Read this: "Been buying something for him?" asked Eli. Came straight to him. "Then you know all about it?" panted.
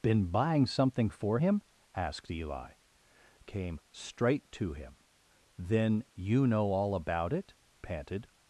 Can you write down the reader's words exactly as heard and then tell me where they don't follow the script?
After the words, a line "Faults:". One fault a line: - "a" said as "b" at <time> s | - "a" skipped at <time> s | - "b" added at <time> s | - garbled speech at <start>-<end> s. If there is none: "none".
"Been buying something for him?" asked Eli. Came straight to him. "Then you know all about it?" panted.
Faults:
none